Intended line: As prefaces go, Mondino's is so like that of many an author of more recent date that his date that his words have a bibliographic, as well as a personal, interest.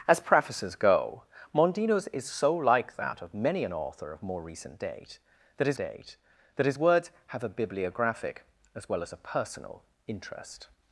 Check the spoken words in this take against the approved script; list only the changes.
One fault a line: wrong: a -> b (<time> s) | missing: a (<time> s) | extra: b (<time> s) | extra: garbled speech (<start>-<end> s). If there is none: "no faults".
no faults